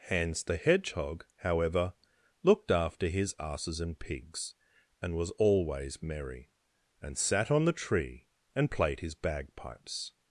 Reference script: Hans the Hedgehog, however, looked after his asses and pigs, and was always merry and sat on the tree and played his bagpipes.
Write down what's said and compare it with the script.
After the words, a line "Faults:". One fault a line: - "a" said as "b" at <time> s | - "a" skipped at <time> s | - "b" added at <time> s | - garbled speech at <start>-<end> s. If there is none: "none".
Hans the Hedgehog, however, looked after his asses and pigs, and was always merry and sat on the tree and played his bagpipes.
Faults:
none